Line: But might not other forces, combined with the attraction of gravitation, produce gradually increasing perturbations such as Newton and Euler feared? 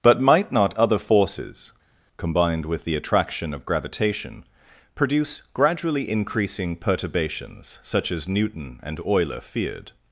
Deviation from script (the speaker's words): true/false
false